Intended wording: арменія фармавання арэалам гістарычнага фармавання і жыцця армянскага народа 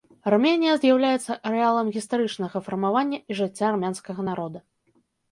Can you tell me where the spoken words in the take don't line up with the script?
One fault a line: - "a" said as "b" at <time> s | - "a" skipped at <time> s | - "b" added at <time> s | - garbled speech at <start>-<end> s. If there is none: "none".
- "фармавання" said as "з'яўляецца" at 0.8 s